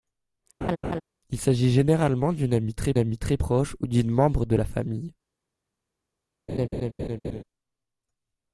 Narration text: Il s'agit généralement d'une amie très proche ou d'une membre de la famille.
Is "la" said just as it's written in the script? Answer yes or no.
yes